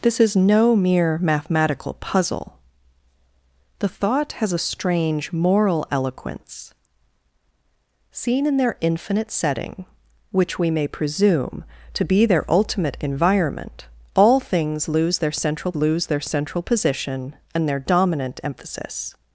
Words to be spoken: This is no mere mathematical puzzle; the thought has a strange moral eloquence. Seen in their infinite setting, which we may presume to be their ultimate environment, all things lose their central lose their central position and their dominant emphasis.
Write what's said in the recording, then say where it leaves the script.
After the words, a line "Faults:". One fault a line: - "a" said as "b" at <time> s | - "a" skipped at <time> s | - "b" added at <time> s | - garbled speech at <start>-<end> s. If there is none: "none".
This is no mere mathematical puzzle; the thought has a strange moral eloquence. Seen in their infinite setting, which we may presume to be their ultimate environment, all things lose their central lose their central position and their dominant emphasis.
Faults:
none